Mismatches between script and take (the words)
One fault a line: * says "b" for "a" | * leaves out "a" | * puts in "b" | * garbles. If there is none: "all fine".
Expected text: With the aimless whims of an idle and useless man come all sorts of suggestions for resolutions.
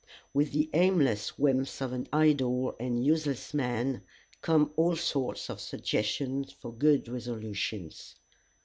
* puts in "good"